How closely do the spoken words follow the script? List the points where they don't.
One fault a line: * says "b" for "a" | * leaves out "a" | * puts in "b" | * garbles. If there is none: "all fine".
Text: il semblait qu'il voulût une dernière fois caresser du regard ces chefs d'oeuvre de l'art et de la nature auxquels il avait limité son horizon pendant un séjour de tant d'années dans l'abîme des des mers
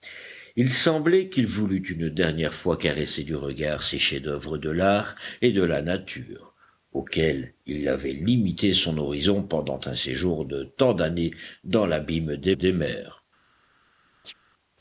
all fine